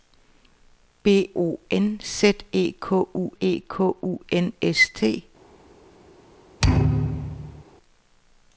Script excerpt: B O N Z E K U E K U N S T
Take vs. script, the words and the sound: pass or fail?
fail